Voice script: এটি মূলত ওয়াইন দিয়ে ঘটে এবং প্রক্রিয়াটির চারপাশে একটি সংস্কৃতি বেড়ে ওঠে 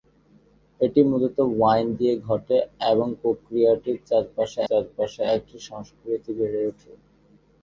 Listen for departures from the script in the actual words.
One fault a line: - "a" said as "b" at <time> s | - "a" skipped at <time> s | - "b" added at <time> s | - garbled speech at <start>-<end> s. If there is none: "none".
- "চারপাশে" added at 4.7 s